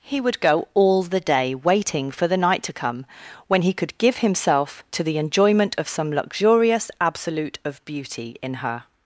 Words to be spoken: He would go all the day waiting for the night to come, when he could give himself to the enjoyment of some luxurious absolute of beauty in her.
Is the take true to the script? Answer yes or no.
yes